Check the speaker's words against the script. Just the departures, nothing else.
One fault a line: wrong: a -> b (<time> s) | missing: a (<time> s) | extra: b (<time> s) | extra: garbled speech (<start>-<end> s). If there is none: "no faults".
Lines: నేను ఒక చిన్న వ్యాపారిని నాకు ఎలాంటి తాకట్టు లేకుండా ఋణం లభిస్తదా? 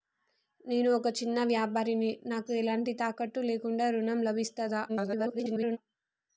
extra: garbled speech (4.9-5.8 s)